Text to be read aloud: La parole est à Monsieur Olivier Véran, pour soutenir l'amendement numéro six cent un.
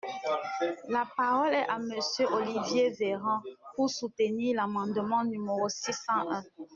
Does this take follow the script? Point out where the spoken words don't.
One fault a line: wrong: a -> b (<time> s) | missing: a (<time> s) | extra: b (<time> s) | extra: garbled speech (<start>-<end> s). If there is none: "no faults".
no faults